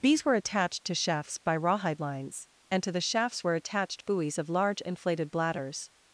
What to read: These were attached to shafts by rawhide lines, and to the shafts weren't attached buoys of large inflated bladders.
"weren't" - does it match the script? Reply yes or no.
no